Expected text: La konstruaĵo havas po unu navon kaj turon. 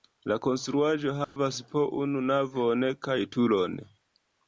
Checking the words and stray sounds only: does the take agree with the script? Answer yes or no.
no